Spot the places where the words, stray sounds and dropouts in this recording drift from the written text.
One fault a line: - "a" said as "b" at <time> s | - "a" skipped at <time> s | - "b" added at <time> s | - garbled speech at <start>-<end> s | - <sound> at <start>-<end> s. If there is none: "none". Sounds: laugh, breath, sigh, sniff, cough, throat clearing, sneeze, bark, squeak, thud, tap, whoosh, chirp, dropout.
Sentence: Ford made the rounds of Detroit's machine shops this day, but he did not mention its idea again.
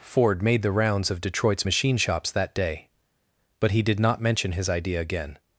- "this" said as "that" at 2.3 s
- "its" said as "his" at 4.5 s